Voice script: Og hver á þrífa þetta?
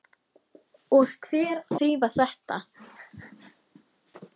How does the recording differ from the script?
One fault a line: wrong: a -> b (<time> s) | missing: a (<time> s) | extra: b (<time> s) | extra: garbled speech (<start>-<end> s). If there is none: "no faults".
no faults